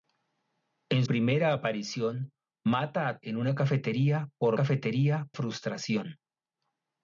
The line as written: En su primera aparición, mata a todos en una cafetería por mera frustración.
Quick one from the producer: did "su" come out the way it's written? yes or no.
no